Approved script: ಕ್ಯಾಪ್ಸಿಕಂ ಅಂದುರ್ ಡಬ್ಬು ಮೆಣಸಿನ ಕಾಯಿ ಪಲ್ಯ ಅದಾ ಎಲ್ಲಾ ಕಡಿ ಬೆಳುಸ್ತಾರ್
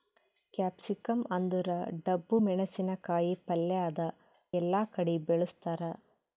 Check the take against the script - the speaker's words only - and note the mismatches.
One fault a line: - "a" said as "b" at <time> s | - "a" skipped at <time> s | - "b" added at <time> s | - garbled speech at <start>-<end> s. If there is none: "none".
none